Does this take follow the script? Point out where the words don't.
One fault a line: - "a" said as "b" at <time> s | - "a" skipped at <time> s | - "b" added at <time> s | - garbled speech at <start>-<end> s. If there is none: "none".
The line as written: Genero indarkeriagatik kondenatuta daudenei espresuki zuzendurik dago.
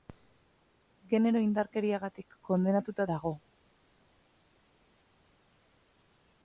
- "daudenei espresuki zuzendurik" skipped at 3.1 s